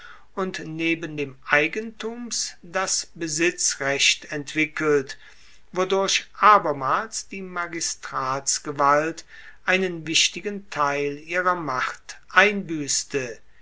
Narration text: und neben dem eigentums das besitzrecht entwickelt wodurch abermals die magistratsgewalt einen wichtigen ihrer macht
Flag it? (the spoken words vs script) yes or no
yes